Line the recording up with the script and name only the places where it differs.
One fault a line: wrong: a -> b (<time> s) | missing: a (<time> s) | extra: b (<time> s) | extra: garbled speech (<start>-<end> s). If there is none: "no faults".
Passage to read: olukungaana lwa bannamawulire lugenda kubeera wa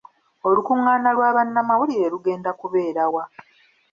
no faults